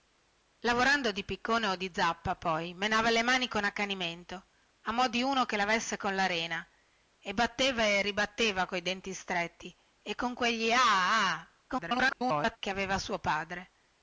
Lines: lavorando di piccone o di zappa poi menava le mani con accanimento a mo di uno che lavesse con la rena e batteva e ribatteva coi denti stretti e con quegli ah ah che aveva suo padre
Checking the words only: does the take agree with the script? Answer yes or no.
no